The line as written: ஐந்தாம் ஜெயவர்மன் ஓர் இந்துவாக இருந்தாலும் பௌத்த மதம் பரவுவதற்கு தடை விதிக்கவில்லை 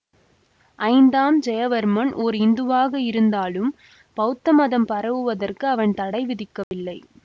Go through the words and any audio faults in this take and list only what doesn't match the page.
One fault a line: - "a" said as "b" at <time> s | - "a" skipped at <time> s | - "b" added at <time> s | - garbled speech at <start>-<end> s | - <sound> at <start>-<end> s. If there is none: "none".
- "அவன்" added at 5.7 s
- dropout at 6.6-6.7 s